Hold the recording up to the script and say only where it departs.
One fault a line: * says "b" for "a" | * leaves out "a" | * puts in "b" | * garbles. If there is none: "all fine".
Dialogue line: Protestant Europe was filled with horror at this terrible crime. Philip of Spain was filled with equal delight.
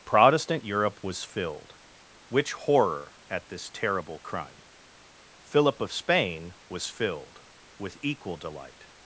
* says "which" for "with"